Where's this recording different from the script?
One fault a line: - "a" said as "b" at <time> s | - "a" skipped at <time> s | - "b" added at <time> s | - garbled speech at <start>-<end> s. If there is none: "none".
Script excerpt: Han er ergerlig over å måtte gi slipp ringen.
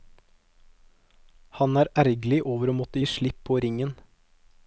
- "på" added at 3.5 s